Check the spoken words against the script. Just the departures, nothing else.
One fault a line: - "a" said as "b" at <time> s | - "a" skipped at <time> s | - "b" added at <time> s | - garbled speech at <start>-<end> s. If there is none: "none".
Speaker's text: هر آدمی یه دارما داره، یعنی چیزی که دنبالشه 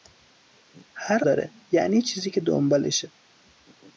- "آدمی یه دارما" skipped at 1.2 s